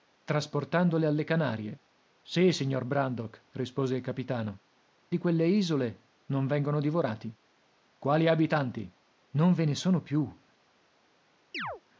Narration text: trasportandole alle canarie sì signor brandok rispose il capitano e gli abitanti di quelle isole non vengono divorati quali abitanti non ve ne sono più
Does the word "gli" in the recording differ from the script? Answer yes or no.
yes